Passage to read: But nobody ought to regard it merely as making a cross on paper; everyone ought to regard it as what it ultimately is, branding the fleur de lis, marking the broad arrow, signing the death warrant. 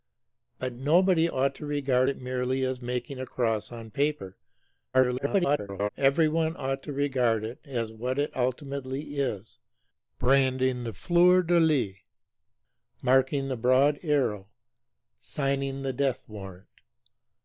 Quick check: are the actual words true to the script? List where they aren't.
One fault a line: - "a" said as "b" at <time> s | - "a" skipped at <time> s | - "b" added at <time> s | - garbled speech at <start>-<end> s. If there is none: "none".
- garbled speech at 4.9-5.9 s